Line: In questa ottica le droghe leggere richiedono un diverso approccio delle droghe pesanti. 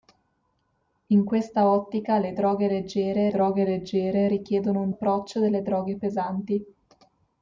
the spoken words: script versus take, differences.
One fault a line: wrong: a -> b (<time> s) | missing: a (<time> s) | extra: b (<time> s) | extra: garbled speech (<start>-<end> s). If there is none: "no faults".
extra: droghe leggere (3.3 s)
missing: diverso (4.9 s)